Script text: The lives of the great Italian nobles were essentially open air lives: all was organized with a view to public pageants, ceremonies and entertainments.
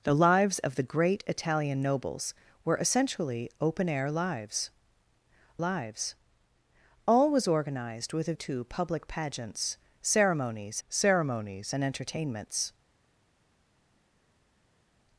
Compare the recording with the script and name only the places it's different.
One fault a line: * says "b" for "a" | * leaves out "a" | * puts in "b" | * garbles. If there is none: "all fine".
* puts in "lives"
* leaves out "view"
* puts in "ceremonies"